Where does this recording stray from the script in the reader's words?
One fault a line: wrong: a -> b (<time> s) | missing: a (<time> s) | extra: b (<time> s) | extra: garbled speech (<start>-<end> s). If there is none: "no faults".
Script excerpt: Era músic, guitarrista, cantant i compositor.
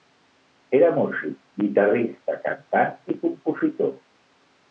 no faults